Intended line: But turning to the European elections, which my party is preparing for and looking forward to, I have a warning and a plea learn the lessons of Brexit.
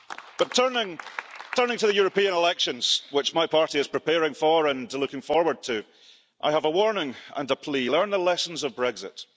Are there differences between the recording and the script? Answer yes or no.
no